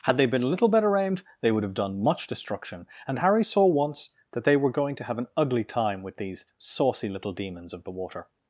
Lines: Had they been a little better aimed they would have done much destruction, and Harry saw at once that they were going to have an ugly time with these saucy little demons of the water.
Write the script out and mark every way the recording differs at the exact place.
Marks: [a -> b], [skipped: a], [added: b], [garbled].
Had they been a little better aimed they would have done much destruction, and Harry saw [skipped: at] once that they were going to have an ugly time with these saucy little demons of the water.